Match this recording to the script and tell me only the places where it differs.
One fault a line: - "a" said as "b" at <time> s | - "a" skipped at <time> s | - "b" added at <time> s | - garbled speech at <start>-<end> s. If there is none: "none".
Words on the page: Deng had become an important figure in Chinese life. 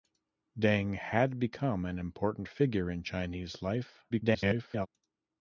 - garbled speech at 4.1-4.9 s